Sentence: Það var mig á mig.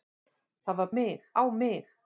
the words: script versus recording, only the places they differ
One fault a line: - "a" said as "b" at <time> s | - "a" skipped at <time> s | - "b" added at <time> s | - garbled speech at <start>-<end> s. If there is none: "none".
none